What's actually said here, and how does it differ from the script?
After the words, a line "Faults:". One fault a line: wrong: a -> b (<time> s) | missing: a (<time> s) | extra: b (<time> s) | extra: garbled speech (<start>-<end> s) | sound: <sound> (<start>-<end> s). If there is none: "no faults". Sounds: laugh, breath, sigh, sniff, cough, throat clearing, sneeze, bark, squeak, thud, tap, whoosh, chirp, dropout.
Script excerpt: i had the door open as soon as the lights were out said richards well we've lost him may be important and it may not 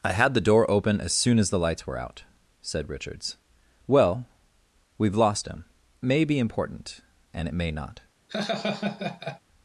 i had the door open as soon as the lights were out said richards well we've lost him may be important and it may not
Faults:
sound: laugh (8.3-9.4 s)